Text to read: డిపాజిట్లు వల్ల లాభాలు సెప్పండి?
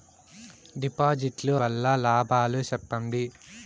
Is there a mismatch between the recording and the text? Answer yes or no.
no